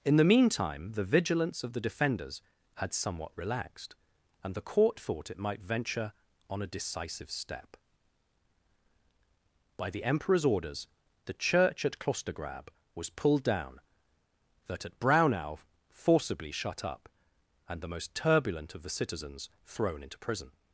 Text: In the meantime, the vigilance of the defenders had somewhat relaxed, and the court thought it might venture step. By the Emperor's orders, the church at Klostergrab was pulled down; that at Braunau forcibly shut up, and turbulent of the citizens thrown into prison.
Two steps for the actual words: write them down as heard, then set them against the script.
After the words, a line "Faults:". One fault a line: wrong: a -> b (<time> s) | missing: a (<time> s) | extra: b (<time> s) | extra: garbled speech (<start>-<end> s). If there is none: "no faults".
In the meantime, the vigilance of the defenders had somewhat relaxed, and the court thought it might venture on a decisive step. By the Emperor's orders, the church at Klostergrab was pulled down; that at Braunau forcibly shut up, and the most turbulent of the citizens thrown into prison.
Faults:
extra: on a decisive (6.5 s)
extra: the most (17.8 s)